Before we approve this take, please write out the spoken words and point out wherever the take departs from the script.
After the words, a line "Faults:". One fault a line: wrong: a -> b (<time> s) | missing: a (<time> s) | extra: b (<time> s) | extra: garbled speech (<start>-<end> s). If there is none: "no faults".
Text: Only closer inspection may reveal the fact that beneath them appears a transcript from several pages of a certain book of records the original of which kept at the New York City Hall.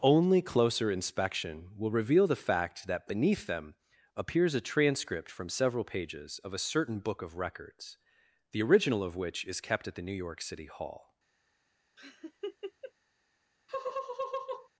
Only closer inspection will reveal the fact that beneath them appears a transcript from several pages of a certain book of records the original of which is kept at the New York City Hall.
Faults:
wrong: may -> will (1.8 s)
extra: is (9.4 s)